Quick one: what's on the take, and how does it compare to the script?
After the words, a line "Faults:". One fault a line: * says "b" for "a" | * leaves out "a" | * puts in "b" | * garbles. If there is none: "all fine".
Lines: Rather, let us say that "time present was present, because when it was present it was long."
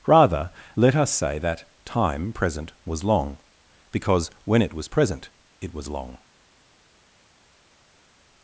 Rather, let us say that "time present was long, because when it was present it was long."
Faults:
* says "long" for "present"